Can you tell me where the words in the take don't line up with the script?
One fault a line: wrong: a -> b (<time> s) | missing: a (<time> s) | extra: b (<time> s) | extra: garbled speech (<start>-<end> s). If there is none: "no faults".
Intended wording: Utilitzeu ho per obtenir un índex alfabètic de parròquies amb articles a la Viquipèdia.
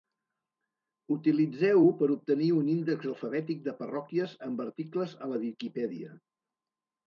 no faults